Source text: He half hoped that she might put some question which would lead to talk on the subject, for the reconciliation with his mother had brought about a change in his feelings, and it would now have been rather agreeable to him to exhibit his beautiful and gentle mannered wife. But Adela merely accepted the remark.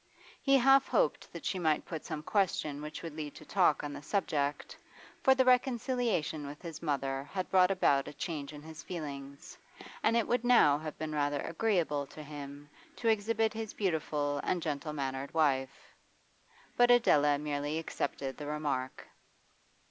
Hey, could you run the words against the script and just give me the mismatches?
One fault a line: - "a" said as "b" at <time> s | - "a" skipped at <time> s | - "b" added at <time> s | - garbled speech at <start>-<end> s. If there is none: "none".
none